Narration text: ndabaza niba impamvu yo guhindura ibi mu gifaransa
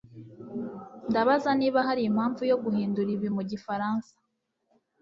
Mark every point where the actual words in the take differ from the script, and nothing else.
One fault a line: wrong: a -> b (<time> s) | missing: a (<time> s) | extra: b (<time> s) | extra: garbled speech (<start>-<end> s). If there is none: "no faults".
extra: hari (1.9 s)